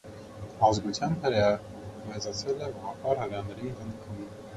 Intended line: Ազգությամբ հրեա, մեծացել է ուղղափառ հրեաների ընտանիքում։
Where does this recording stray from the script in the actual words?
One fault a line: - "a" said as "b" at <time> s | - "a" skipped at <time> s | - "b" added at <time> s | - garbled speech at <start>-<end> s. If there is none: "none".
none